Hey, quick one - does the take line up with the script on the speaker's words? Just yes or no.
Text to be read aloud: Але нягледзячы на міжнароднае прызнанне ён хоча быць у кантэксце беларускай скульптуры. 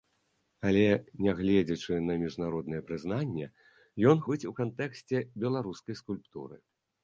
no